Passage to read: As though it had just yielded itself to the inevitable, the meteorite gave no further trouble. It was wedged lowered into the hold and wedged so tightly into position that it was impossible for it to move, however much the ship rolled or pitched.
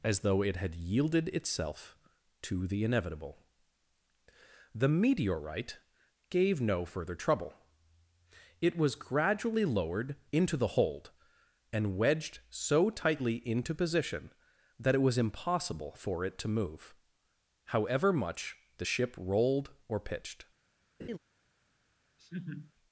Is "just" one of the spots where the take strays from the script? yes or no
yes